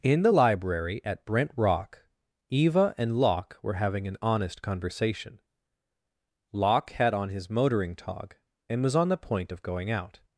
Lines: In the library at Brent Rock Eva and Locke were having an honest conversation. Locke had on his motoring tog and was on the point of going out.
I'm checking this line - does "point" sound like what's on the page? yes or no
yes